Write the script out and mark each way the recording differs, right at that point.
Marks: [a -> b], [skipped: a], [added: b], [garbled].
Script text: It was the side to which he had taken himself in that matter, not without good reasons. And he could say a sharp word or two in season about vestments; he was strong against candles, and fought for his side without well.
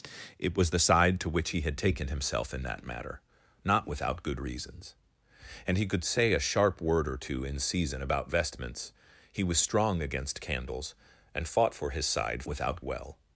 It was the side to which he had taken himself in that matter, not without good reasons. And he could say a sharp word or two in season about vestments; he was strong against candles, and fought for his side without well.